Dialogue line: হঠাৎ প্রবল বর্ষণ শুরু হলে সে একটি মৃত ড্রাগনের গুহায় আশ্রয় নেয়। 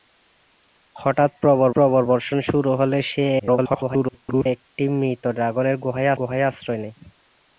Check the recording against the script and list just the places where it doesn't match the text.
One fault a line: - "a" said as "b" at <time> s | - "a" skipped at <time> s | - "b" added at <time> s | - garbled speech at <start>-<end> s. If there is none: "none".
- "প্রবল" added at 1.7 s
- garbled speech at 3.4-4.5 s
- "গুহায়" added at 6.2 s